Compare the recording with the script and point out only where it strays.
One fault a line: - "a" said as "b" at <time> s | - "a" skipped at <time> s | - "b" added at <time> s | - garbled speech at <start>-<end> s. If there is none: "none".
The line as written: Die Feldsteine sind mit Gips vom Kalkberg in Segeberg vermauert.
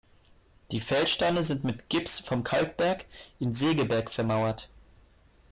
none